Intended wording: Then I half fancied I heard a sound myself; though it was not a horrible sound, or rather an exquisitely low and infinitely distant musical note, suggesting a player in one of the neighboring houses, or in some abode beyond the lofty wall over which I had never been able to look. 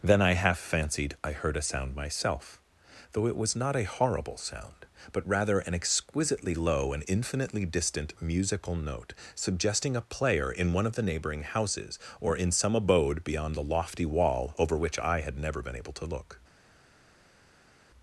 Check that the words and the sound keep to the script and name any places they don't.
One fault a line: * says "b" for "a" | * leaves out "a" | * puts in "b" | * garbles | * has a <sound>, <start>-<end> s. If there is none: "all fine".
* says "but" for "or"